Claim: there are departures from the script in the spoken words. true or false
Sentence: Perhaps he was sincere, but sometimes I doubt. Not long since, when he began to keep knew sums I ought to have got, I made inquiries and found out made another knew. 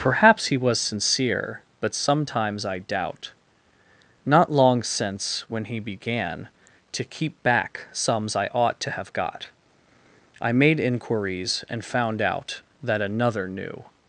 true